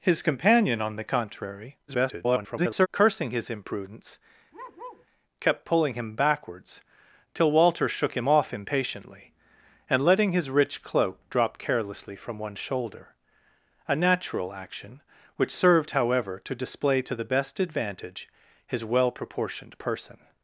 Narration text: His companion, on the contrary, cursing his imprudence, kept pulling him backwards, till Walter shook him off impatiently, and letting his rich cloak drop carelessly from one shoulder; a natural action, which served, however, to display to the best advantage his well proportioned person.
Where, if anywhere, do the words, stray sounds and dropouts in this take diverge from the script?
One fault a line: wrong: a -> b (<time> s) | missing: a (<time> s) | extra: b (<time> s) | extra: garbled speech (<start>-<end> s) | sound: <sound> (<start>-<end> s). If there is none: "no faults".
extra: garbled speech (1.9-2.9 s)
sound: bark (4.5-5.1 s)